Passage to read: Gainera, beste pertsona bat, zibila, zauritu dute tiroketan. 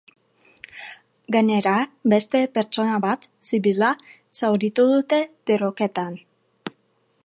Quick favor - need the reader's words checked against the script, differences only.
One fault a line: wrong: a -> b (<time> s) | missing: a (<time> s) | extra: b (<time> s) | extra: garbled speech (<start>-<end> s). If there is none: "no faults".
no faults